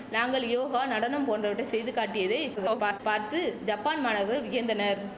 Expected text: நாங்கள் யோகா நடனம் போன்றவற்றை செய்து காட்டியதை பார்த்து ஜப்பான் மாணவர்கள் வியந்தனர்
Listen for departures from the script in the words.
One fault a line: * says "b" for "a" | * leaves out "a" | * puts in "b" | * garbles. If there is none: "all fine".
* garbles